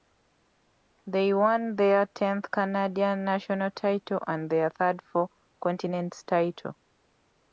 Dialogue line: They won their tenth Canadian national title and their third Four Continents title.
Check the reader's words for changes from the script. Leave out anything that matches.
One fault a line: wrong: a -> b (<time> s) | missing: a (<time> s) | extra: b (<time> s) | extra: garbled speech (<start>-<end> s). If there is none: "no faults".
no faults